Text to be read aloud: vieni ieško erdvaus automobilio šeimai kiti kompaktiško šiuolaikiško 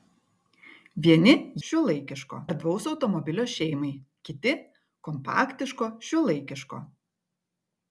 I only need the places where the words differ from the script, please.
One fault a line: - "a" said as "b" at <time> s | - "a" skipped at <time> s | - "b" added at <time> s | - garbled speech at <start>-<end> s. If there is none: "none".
- "ieško" said as "šiuolaikiško" at 1.7 s